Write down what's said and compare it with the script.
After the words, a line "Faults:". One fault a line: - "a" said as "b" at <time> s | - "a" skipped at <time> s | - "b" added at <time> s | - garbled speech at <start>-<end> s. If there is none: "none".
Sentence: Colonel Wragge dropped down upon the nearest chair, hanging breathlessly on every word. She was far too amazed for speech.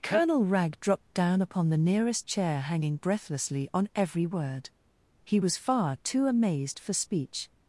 Colonel Wragge dropped down upon the nearest chair, hanging breathlessly on every word. He was far too amazed for speech.
Faults:
- "She" said as "He" at 5.2 s